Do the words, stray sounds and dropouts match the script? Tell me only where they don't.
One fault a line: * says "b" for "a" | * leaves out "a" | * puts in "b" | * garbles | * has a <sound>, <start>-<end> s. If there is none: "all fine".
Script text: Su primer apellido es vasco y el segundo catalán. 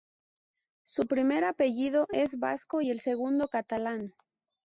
all fine